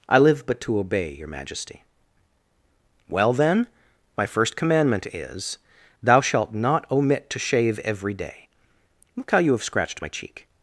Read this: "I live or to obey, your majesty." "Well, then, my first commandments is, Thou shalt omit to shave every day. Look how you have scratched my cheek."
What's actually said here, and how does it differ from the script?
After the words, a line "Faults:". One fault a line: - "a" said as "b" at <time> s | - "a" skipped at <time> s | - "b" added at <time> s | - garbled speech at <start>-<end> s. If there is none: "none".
"I live but to obey, your majesty." "Well, then, my first commandment is, Thou shalt not omit to shave every day. Look how you have scratched my cheek."
Faults:
- "or" said as "but" at 0.5 s
- "commandments" said as "commandment" at 4.5 s
- "not" added at 6.5 s